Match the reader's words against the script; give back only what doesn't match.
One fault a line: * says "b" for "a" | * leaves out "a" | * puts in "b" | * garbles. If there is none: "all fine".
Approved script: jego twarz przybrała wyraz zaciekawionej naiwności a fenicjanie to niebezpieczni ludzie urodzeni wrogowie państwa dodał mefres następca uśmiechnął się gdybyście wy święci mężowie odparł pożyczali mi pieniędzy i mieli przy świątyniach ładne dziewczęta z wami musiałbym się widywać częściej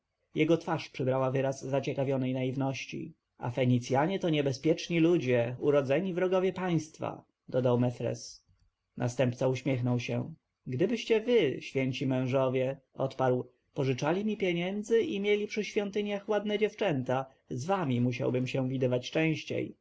all fine